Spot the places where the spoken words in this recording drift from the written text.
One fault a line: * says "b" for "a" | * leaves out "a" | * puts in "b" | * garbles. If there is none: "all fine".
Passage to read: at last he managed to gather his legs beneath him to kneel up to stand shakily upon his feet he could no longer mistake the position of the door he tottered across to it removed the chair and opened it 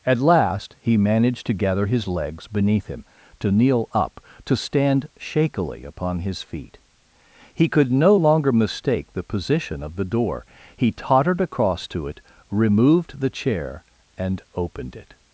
all fine